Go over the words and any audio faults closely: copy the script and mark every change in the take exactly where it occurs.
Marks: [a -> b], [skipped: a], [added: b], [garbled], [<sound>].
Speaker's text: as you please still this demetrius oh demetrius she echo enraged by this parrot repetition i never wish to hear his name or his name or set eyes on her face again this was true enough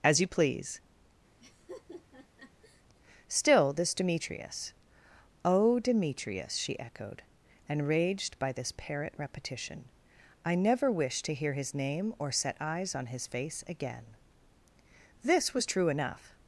as you please [laugh] still this demetrius oh demetrius she [echo -> echoed] enraged by this parrot repetition i never wish to hear his name or [skipped: his name or] set eyes on [her -> his] face again this was true enough